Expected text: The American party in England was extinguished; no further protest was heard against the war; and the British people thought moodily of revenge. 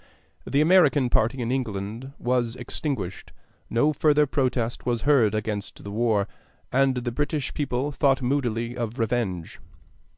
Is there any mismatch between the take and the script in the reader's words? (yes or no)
no